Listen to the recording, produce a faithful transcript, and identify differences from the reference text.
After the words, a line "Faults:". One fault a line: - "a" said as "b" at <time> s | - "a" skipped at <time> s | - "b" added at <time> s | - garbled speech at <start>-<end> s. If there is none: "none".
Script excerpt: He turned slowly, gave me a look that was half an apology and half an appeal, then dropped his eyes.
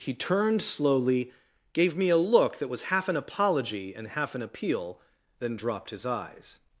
He turned slowly, gave me a look that was half an apology and half an appeal, then dropped his eyes.
Faults:
none